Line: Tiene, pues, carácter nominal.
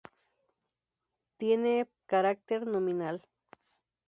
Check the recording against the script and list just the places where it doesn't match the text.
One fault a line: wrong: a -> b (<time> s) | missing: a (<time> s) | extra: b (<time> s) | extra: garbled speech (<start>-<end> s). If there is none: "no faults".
missing: pues (1.9 s)